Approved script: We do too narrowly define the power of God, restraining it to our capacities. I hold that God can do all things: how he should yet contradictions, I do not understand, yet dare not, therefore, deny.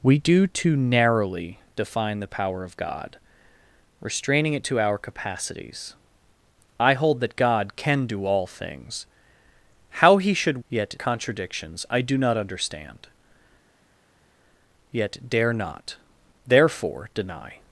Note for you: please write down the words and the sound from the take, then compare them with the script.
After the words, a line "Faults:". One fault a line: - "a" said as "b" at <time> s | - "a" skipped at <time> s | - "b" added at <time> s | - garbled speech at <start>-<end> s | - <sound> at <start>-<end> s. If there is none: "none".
We do too narrowly define the power of God, restraining it to our capacities. I hold that God can do all things: how he should yet contradictions, I do not understand, yet dare not, therefore, deny.
Faults:
none